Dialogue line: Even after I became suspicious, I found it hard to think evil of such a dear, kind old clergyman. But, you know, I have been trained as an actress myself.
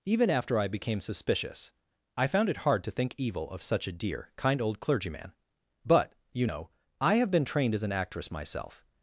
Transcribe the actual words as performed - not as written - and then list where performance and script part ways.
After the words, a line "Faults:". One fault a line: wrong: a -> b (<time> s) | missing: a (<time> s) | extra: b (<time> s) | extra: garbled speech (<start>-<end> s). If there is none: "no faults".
Even after I became suspicious, I found it hard to think evil of such a dear, kind old clergyman. But, you know, I have been trained as an actress myself.
Faults:
no faults